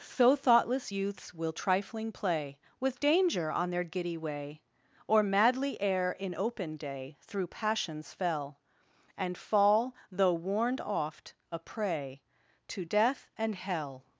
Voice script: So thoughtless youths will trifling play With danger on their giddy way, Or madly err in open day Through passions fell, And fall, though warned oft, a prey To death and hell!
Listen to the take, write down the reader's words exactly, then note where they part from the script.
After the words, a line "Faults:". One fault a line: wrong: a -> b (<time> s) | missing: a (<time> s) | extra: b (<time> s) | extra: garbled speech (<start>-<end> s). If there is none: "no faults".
So thoughtless youths will trifling play With danger on their giddy way, Or madly err in open day Through passions fell, And fall, though warned oft, a prey To death and hell!
Faults:
no faults